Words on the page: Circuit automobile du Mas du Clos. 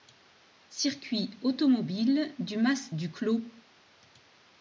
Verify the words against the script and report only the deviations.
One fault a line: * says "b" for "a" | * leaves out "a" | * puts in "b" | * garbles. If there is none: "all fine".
all fine